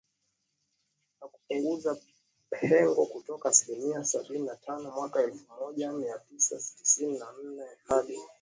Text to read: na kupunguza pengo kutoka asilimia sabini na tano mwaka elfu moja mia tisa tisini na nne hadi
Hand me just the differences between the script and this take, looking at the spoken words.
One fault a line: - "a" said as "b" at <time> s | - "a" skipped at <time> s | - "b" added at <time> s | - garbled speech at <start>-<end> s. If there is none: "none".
none